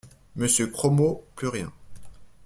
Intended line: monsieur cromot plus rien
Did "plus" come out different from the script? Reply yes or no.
no